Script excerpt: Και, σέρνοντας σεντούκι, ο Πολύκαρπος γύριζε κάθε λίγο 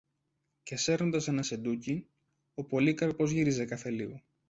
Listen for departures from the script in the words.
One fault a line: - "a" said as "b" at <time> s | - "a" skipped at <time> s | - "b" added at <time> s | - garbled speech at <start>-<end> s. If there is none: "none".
- "ένα" added at 1.3 s